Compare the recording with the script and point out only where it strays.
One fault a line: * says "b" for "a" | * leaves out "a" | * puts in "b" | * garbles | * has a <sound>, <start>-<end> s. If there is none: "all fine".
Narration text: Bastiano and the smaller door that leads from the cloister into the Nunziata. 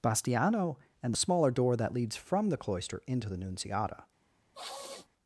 * has a sniff, 4.5-5.1 s